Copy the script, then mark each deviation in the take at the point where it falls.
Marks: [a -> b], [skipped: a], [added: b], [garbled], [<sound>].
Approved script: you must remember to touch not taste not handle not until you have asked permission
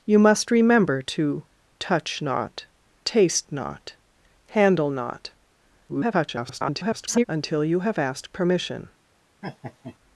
you must remember to touch not taste not handle not [garbled] until you have asked permission [laugh]